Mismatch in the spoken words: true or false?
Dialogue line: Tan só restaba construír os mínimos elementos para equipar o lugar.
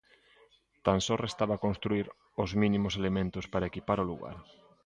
false